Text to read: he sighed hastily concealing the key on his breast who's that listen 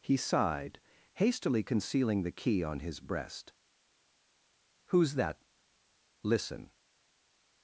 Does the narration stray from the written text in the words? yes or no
no